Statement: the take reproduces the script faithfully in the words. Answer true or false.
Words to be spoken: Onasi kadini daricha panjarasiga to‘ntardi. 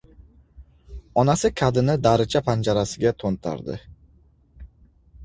true